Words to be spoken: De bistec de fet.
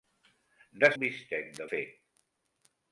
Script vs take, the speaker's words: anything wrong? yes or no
no